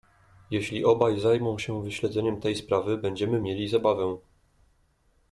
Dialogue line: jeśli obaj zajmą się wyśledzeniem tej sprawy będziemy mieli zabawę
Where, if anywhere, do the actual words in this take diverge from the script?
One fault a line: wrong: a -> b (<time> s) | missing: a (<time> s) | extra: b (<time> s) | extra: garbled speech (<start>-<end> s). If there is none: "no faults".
no faults